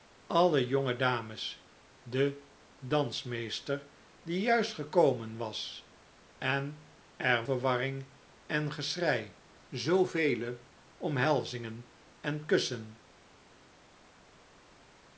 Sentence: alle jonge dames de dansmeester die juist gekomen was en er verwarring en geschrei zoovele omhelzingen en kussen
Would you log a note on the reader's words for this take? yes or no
no